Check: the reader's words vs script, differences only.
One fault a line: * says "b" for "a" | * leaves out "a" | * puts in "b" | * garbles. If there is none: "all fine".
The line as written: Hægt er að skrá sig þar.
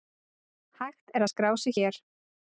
* says "hér" for "þar"